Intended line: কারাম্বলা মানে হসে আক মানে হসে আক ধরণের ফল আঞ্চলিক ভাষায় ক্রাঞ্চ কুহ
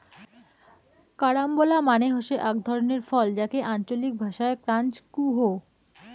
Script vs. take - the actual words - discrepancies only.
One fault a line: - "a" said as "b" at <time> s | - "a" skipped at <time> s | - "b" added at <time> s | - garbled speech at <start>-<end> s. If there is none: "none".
- "মানে হসে আক" skipped at 2.5 s
- "যাকে" added at 3.4 s